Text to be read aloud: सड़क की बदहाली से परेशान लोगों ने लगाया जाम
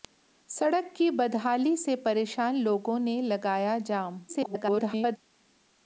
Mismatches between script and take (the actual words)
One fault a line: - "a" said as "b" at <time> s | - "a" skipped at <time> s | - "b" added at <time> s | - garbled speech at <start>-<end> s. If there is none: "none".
- garbled speech at 4.3-5.2 s